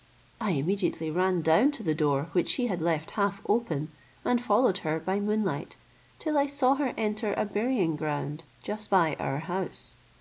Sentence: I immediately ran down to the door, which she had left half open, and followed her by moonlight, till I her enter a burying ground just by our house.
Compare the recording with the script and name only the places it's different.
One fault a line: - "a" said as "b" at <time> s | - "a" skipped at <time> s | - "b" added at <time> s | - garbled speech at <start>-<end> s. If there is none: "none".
- "saw" added at 6.5 s